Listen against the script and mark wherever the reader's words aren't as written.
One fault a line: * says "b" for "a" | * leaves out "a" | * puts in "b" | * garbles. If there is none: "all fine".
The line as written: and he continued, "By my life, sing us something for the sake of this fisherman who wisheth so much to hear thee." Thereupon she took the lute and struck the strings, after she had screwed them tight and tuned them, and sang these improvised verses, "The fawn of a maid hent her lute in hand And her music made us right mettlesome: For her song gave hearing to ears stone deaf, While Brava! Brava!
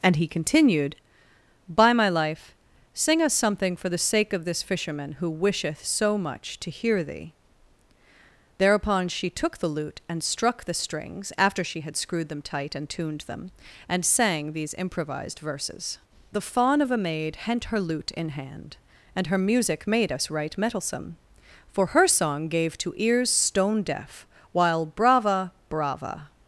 * leaves out "hearing"